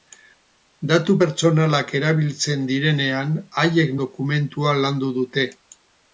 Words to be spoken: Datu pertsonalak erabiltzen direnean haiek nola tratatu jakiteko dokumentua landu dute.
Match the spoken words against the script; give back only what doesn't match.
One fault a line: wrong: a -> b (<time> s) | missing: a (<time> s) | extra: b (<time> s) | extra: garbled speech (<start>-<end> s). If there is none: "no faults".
missing: nola tratatu jakiteko (3.9 s)